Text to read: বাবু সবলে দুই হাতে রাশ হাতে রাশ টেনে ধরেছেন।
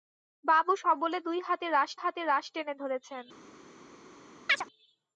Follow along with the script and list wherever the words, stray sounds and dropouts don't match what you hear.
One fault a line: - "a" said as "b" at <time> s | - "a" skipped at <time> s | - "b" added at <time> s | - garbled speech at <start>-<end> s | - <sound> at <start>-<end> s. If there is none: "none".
- chirp at 4.5-4.7 s